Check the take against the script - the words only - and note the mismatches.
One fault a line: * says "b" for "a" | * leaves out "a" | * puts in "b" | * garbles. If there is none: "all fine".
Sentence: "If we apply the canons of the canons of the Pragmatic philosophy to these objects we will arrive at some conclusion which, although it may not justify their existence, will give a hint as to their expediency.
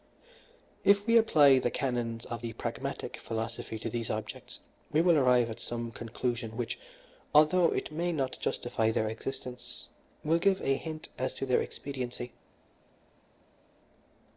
* leaves out "canons of the"